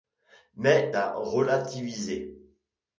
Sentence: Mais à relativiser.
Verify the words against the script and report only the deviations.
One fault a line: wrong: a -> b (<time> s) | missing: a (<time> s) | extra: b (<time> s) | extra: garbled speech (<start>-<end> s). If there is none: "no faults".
no faults